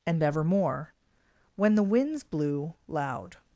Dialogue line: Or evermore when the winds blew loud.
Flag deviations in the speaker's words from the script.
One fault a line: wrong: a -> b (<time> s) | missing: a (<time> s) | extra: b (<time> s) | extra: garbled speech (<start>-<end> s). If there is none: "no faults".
wrong: Or -> And (0.1 s)